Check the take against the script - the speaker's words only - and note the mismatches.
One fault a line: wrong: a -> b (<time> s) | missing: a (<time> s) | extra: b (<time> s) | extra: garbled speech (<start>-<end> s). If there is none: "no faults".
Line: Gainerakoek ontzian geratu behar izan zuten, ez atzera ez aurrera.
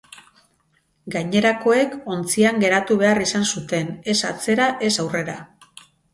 no faults